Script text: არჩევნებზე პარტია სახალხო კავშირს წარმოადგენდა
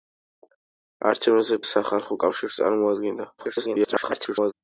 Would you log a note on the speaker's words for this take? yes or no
yes